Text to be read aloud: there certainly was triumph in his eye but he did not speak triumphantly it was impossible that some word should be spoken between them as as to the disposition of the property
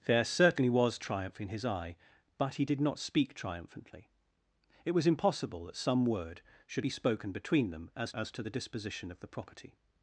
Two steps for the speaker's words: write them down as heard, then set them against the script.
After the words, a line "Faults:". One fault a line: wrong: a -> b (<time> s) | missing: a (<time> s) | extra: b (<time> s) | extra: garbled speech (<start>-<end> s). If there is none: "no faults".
there certainly was triumph in his eye but he did not speak triumphantly it was impossible that some word should be spoken between them as as to the disposition of the property
Faults:
no faults